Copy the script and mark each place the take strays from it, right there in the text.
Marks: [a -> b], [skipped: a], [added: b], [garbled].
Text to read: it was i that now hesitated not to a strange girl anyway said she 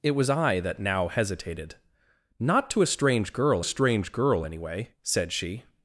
it was i that now hesitated not to a strange girl [added: strange girl] anyway said she